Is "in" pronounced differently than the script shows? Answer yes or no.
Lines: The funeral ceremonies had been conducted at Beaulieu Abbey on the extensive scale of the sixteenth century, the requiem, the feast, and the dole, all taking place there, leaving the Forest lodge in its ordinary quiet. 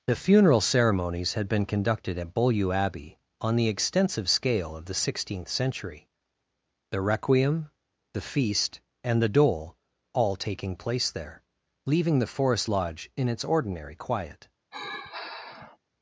no